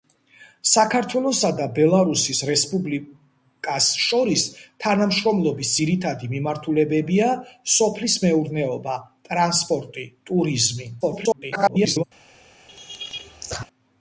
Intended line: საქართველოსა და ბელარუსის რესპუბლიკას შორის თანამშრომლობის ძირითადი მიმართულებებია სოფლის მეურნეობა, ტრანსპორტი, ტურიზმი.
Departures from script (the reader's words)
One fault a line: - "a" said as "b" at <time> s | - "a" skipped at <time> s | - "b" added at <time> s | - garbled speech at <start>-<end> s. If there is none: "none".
- garbled speech at 11.0-12.0 s